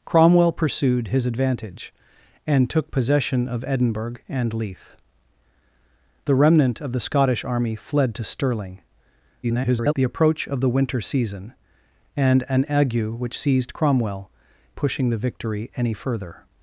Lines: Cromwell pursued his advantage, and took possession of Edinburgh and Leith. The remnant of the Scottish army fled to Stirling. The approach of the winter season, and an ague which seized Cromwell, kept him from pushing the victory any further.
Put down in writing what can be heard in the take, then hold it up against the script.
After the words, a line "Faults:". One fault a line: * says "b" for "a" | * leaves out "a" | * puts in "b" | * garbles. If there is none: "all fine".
Cromwell pursued his advantage, and took possession of Edinburgh and Leith. The remnant of the Scottish army fled to Stirling. [garbled] The approach of the winter season, and an ague which seized Cromwell, pushing the victory any further.
Faults:
* garbles
* leaves out "kept him from"